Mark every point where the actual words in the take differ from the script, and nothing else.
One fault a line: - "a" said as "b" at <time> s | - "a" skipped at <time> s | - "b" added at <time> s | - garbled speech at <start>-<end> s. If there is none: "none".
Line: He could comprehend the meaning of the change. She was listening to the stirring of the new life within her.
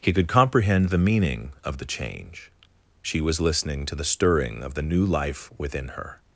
none